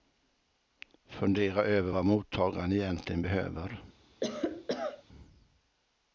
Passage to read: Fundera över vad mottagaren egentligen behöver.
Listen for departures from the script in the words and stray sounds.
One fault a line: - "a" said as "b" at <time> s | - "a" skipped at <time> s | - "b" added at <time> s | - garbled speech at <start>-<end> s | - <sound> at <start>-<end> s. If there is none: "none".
- cough at 4.2-5.0 s